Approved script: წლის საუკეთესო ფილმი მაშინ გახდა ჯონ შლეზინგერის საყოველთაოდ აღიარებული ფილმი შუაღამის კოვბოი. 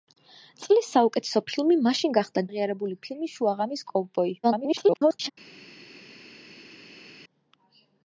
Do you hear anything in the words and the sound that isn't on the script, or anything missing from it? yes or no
yes